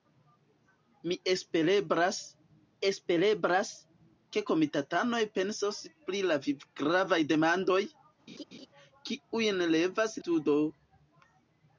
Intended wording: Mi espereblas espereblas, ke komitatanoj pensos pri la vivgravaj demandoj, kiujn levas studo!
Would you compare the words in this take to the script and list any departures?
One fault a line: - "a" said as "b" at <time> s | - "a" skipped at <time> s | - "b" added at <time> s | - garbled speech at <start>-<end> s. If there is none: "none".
none